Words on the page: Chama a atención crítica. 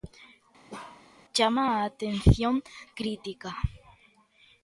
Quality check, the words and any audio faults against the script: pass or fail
fail